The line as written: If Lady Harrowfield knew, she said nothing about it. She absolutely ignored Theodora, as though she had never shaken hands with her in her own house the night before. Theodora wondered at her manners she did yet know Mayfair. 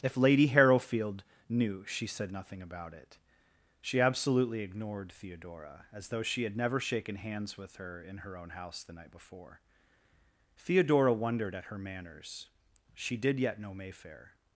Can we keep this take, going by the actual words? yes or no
yes